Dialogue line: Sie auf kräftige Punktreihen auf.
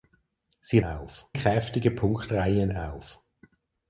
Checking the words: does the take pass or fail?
pass